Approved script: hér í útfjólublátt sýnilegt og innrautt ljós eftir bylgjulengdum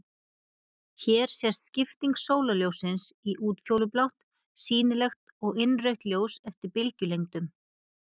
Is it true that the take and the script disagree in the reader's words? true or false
true